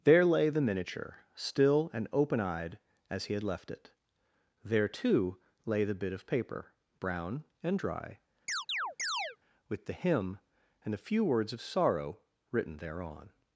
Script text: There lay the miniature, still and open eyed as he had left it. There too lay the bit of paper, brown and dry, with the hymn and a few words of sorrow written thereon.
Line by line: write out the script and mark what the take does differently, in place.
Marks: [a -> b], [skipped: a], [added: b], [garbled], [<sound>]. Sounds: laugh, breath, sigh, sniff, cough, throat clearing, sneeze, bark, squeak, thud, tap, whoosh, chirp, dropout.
There lay the miniature, still and open eyed as he had left it. There too lay the bit of paper, brown and dry, [chirp] with the hymn and a few words of sorrow written thereon.